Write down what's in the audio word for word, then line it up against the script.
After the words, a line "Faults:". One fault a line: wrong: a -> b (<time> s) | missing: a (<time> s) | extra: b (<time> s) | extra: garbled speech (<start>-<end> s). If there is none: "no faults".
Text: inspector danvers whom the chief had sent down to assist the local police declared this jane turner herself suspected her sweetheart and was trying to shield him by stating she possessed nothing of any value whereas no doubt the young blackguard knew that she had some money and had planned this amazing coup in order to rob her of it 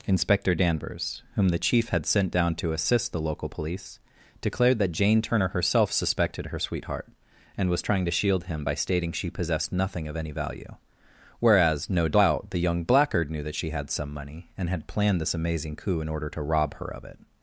inspector danvers whom the chief had sent down to assist the local police declared that jane turner herself suspected her sweetheart and was trying to shield him by stating she possessed nothing of any value whereas no doubt the young blackguard knew that she had some money and had planned this amazing coup in order to rob her of it
Faults:
wrong: this -> that (4.8 s)